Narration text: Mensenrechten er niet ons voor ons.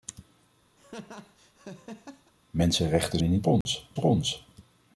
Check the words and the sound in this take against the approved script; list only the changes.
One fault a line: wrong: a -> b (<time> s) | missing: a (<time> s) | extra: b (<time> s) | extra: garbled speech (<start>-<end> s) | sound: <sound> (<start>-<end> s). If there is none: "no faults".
sound: laugh (0.8-2.3 s)
sound: dropout (3.6-3.7 s)